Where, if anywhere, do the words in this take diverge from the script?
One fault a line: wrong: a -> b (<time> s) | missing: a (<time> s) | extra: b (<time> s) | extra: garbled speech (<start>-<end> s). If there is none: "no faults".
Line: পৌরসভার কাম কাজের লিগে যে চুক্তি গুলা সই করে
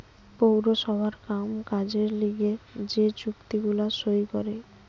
no faults